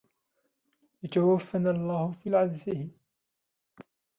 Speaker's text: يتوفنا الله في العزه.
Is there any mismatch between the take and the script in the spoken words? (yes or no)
no